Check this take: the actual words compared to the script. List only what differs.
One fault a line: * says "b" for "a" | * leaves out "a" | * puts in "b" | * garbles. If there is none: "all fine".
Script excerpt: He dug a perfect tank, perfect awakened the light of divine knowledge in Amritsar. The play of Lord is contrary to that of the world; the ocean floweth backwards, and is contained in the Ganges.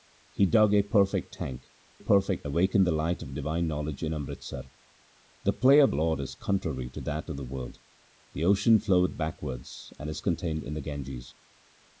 all fine